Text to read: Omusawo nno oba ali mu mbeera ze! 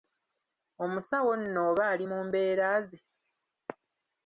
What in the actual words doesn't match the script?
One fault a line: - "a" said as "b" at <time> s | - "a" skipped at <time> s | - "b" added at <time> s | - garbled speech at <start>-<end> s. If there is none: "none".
none